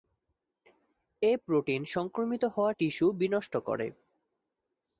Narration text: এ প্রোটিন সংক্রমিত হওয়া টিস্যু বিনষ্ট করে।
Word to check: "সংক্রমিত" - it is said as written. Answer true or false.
true